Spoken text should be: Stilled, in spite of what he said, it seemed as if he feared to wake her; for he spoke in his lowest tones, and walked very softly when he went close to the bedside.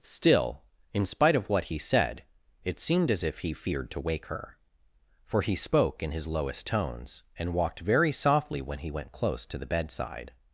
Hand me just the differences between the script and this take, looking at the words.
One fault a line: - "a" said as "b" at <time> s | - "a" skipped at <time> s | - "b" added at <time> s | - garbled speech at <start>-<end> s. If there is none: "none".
- "Stilled" said as "Still" at 0.0 s